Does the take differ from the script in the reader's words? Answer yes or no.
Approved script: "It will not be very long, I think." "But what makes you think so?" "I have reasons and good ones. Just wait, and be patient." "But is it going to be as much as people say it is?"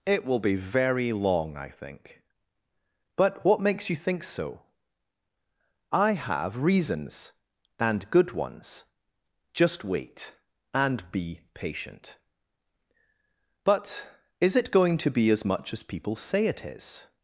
yes